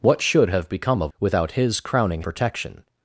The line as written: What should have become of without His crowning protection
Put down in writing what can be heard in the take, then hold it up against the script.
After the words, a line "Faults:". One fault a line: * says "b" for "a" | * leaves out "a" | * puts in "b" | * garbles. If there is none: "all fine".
What should have become of without His crowning protection
Faults:
all fine